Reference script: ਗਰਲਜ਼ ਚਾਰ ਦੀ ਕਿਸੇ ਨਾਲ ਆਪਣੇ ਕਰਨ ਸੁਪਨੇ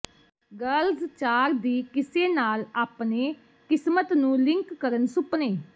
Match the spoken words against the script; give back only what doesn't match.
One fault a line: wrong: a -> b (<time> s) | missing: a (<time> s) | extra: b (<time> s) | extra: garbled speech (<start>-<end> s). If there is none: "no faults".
extra: ਕਿਸਮਤ ਨੂੰ ਲਿੰਕ (3.7 s)